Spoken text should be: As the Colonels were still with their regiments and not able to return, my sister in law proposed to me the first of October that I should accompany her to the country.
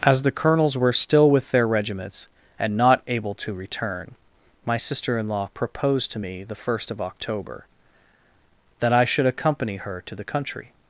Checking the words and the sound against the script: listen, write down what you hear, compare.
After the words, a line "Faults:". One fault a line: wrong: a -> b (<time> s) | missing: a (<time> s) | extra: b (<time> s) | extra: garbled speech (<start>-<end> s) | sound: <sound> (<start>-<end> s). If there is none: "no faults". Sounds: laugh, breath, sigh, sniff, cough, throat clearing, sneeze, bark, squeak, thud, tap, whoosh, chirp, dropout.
As the Colonels were still with their regiments and not able to return, my sister in law proposed to me the first of October that I should accompany her to the country.
Faults:
no faults